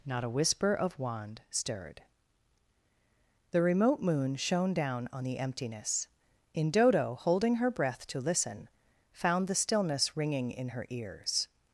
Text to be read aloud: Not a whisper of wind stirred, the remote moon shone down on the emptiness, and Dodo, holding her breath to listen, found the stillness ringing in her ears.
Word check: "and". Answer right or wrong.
wrong